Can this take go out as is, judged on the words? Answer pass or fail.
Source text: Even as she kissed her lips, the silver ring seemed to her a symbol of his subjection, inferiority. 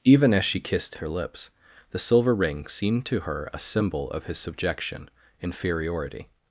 pass